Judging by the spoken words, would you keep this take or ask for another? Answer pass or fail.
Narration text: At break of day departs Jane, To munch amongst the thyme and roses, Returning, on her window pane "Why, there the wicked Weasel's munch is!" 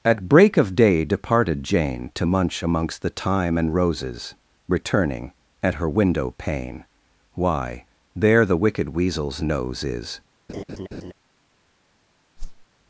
fail